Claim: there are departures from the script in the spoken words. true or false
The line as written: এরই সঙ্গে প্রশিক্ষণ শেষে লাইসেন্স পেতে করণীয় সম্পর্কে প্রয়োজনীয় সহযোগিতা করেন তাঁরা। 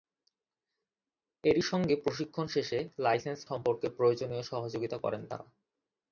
true